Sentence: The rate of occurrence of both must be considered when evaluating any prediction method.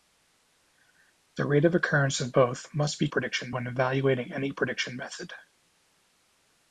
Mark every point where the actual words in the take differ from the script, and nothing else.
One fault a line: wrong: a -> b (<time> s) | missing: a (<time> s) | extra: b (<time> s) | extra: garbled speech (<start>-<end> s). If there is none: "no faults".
wrong: considered -> prediction (3.1 s)